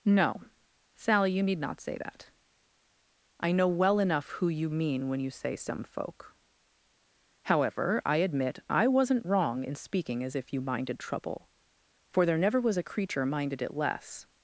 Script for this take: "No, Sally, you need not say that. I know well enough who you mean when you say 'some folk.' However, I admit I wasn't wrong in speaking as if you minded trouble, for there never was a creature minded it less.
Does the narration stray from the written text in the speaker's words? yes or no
no